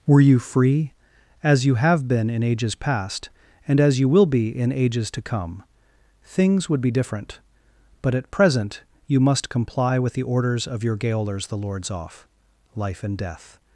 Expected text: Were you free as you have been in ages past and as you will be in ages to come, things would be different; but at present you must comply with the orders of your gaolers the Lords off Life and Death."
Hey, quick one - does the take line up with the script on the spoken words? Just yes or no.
yes